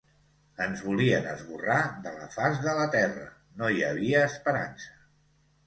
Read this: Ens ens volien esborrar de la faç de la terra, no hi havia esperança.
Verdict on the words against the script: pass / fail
fail